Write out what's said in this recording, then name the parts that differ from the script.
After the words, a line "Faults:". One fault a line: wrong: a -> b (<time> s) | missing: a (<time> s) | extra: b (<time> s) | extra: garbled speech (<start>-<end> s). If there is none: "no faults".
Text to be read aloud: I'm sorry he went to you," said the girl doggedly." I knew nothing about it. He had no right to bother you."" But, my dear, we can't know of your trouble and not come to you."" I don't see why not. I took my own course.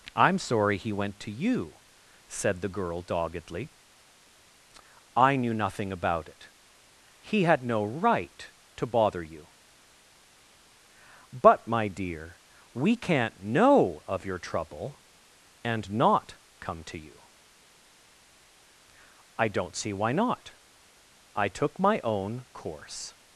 I'm sorry he went to you," said the girl doggedly." I knew nothing about it. He had no right to bother you."" But, my dear, we can't know of your trouble and not come to you."" I don't see why not. I took my own course.
Faults:
no faults